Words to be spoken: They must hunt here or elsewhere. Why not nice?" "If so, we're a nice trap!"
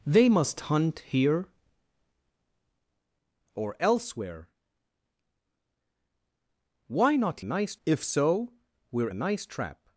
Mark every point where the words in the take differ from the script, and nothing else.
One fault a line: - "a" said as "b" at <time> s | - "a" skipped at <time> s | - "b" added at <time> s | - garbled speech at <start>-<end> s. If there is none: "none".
none